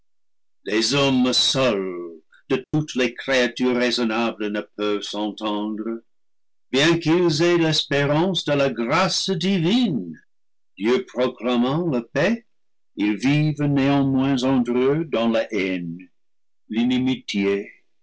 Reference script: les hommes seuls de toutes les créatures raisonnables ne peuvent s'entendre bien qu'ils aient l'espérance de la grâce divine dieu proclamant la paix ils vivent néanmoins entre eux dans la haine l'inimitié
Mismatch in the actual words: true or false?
false